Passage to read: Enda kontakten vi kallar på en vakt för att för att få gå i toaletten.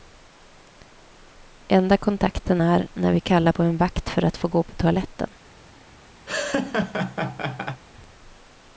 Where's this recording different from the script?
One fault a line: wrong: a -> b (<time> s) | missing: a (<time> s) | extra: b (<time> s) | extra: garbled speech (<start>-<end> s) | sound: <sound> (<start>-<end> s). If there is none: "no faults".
extra: är när (2.6 s)
missing: för att (4.4 s)
wrong: i -> på (4.6 s)
sound: laugh (6.3-7.8 s)